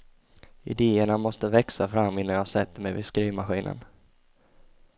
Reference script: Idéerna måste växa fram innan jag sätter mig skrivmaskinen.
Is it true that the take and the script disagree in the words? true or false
true